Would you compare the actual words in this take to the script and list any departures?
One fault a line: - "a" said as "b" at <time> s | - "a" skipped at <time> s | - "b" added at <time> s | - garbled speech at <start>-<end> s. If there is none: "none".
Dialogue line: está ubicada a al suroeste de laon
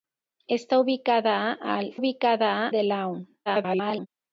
- "suroeste" said as "ubicada" at 1.9 s
- garbled speech at 3.5-4.1 s